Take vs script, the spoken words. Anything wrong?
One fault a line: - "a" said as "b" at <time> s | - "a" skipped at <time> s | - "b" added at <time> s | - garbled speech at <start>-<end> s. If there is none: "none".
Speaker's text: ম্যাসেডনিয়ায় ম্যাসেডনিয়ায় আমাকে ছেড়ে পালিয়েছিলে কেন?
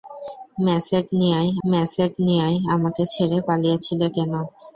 none